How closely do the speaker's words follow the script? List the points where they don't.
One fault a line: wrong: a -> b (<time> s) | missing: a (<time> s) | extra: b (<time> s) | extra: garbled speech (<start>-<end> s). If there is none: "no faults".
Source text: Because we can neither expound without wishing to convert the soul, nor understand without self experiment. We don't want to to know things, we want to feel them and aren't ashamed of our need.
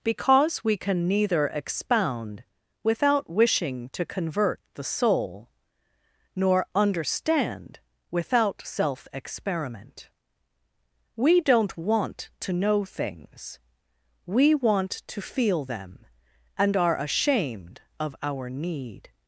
missing: to (12.5 s)
wrong: aren't -> are (16.8 s)